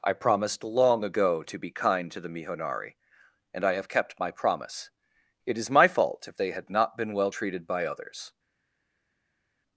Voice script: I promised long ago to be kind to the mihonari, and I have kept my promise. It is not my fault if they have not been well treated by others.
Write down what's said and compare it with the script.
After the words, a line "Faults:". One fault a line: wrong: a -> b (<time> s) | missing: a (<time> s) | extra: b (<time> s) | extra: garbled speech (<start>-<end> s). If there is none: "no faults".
I promised long ago to be kind to the mihonari, and I have kept my promise. It is my fault if they had not been well treated by others.
Faults:
missing: not (5.7 s)
wrong: have -> had (6.5 s)